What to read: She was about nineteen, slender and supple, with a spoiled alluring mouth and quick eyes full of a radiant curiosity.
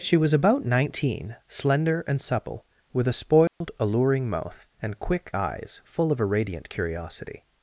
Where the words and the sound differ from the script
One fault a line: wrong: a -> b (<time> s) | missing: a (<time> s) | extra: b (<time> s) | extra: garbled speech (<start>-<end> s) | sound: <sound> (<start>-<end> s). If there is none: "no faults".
sound: dropout (3.5-3.6 s)